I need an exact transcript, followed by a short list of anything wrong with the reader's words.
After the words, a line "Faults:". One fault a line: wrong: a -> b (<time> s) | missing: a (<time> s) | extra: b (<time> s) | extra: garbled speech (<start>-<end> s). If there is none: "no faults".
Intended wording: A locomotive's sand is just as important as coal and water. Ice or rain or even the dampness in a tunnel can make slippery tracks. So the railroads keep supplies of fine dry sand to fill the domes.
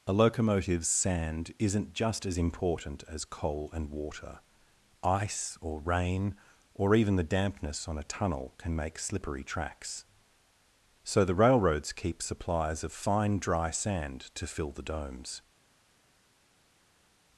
A locomotive's sand isn't just as important as coal and water. Ice or rain or even the dampness on a tunnel can make slippery tracks. So the railroads keep supplies of fine dry sand to fill the domes.
Faults:
wrong: is -> isn't (1.6 s)
wrong: in -> on (7.9 s)